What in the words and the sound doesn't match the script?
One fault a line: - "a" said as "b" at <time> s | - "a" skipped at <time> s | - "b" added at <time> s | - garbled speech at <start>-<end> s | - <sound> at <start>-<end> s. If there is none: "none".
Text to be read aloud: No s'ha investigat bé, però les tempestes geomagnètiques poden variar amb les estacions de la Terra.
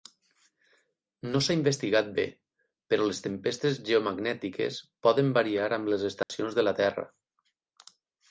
- dropout at 6.2-6.3 s